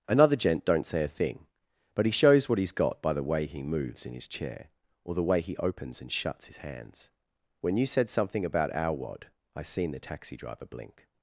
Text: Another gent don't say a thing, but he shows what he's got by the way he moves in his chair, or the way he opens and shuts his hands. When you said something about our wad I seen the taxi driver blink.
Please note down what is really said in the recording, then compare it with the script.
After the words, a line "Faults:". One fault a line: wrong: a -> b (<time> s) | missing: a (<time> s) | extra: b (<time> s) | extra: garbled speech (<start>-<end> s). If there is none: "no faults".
Another gent don't say a thing, but he shows what he's got by the way he moves in his chair, or the way he opens and shuts his hands. When you said something about our wad I seen the taxi driver blink.
Faults:
no faults